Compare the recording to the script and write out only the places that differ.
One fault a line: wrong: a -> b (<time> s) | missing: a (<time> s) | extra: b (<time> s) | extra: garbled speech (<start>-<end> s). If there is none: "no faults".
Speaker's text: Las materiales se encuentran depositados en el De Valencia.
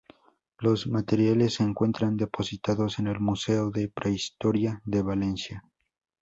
wrong: Las -> Los (0.6 s)
extra: Museo de Prehistoria (3.2 s)